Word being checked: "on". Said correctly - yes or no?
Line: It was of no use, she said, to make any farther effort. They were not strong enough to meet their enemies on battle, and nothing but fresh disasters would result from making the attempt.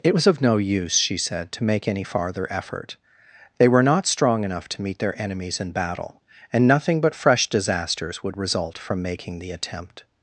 no